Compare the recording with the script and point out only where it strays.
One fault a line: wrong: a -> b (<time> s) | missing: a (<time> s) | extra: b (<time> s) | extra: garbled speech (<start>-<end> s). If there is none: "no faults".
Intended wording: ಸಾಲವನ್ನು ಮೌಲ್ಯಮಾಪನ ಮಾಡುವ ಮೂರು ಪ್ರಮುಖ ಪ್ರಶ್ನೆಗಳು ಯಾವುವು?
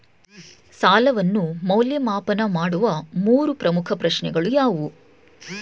no faults